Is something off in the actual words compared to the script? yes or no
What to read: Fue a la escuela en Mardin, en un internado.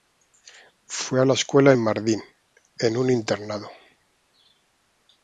no